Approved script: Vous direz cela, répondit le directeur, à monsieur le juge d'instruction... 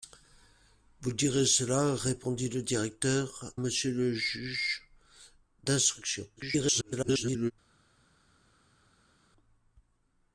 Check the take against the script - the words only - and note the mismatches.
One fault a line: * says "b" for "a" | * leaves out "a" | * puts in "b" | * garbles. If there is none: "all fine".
* leaves out "à"
* garbles